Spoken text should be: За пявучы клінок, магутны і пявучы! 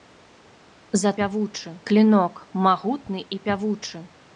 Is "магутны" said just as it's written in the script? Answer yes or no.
yes